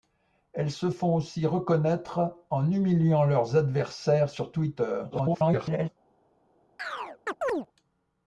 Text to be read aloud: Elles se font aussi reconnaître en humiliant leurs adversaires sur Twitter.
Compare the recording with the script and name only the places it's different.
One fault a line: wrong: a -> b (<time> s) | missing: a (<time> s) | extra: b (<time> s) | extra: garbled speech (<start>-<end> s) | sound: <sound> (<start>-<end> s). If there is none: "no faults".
extra: garbled speech (5.1-5.9 s)
sound: chirp (6.8-7.7 s)